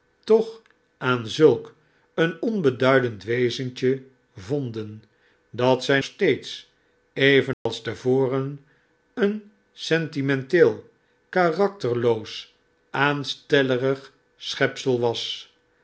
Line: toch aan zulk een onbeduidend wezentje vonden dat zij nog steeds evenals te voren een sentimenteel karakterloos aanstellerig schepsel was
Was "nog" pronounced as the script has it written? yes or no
no